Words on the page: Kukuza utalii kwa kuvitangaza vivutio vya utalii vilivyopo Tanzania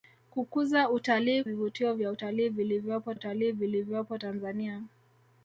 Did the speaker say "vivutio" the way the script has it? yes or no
no